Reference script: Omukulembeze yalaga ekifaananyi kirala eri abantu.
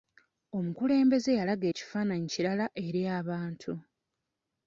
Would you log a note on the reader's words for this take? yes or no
no